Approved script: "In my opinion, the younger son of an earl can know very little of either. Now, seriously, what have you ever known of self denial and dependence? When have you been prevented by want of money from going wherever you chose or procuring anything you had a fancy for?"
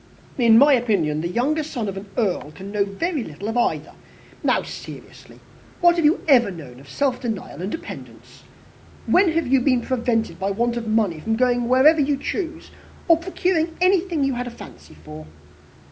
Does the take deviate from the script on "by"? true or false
false